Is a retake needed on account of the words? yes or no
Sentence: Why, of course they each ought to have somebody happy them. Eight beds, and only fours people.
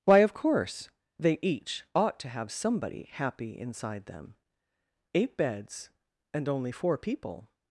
yes